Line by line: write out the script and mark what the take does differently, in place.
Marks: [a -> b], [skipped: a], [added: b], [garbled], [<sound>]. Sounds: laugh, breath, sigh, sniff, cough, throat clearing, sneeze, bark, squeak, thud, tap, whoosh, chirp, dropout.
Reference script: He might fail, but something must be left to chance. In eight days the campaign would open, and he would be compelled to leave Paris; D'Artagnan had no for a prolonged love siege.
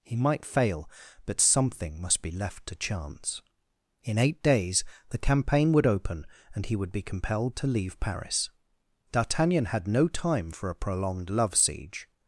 He might fail, but something must be left to chance. In eight days the campaign would open, and he would be compelled to leave Paris; D'Artagnan had no [added: time] for a prolonged love siege.